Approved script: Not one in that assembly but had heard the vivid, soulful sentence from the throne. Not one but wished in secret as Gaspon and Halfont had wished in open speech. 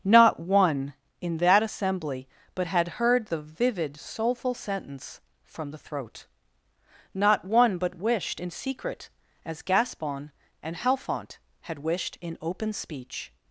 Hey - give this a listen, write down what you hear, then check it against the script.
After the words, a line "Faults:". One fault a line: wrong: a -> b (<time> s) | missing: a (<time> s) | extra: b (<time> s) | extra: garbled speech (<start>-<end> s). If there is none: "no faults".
Not one in that assembly but had heard the vivid, soulful sentence from the throat. Not one but wished in secret as Gaspon and Halfont had wished in open speech.
Faults:
wrong: throne -> throat (5.8 s)